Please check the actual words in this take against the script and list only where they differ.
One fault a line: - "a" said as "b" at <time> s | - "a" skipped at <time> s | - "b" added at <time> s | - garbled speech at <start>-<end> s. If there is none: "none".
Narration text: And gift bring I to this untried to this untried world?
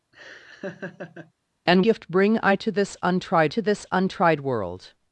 none